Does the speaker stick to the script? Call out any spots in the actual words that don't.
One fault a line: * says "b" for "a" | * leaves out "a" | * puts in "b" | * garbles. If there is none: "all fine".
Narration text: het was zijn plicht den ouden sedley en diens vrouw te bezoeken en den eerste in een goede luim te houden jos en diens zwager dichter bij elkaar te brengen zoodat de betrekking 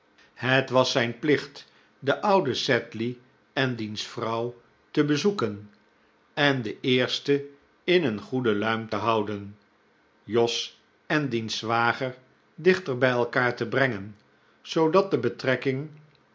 all fine